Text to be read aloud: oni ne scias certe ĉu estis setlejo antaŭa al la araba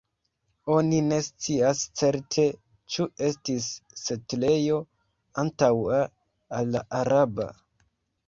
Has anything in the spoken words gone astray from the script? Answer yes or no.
no